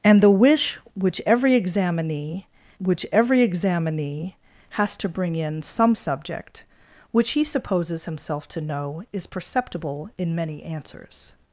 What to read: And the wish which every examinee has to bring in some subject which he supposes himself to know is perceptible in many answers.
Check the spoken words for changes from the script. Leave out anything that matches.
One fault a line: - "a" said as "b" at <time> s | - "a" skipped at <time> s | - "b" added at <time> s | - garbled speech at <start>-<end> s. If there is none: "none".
- "which every examinee" added at 2.8 s